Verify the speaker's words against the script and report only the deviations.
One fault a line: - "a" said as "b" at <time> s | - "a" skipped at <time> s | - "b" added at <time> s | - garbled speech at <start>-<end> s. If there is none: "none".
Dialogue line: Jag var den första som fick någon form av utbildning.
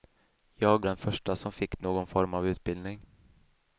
- "var" skipped at 0.8 s